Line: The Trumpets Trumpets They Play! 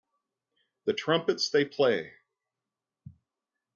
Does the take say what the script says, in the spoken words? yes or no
no